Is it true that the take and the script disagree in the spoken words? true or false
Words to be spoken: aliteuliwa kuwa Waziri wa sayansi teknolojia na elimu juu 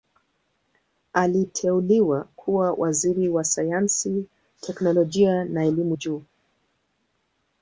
false